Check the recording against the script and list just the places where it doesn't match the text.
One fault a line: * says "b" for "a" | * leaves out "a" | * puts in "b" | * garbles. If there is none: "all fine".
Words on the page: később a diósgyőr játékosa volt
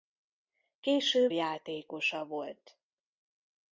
* leaves out "a diósgyőr"